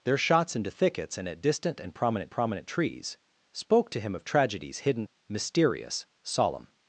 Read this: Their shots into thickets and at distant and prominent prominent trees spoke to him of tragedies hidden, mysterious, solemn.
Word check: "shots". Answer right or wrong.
right